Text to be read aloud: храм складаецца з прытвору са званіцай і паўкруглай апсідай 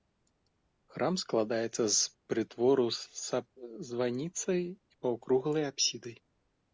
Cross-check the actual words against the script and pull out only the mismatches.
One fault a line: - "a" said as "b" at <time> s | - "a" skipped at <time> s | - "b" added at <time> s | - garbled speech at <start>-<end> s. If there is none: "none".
none